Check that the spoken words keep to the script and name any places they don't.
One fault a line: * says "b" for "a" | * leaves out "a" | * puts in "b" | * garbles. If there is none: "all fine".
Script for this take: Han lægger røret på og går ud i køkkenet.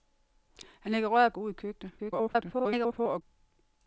* leaves out "på og"
* garbles